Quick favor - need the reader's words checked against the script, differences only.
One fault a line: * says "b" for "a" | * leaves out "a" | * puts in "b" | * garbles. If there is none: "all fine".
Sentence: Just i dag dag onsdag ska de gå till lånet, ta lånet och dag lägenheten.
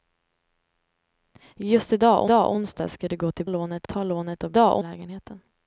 all fine